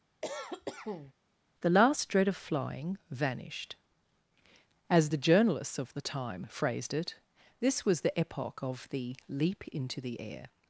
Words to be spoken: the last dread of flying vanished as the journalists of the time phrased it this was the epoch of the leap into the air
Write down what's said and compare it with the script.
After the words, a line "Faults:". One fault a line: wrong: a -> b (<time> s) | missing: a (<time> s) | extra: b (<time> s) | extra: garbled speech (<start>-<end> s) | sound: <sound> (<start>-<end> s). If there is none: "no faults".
the last dread of flying vanished as the journalists of the time phrased it this was the epoch of the leap into the air
Faults:
sound: cough (0.2-1.1 s)